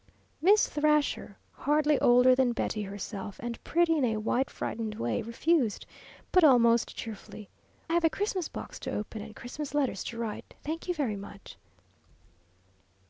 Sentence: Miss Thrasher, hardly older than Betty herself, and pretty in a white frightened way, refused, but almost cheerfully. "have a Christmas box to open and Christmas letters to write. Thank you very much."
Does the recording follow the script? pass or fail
pass